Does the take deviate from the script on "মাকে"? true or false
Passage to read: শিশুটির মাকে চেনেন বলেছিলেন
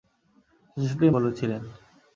true